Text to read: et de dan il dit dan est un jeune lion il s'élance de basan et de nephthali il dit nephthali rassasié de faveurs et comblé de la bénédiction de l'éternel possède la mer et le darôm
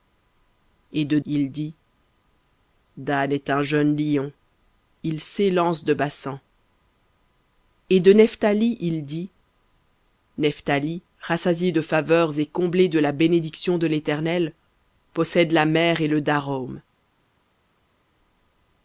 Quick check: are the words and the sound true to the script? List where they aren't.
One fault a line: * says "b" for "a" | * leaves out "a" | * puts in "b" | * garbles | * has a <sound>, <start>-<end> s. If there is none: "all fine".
* leaves out "dan"